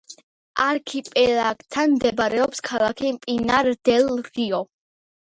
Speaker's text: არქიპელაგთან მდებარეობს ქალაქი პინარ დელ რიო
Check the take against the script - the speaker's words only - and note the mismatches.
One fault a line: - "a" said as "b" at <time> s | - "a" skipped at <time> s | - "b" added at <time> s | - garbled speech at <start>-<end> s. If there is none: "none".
none